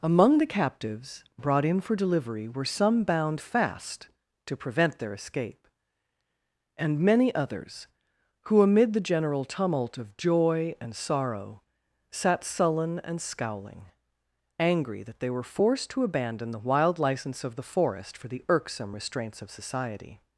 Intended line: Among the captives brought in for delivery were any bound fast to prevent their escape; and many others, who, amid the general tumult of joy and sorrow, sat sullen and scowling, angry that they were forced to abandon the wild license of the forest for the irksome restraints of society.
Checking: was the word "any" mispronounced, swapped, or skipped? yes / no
yes